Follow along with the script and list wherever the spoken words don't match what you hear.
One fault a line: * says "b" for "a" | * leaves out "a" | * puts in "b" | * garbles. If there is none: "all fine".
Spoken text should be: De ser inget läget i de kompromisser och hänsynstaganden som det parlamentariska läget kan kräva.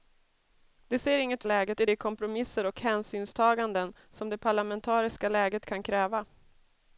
all fine